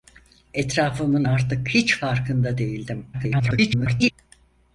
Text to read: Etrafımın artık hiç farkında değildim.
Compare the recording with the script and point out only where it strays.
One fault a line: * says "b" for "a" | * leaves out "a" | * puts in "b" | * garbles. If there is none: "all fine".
* garbles